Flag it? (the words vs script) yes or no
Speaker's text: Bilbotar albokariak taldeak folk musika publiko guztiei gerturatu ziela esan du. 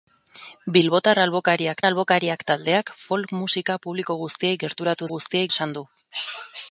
yes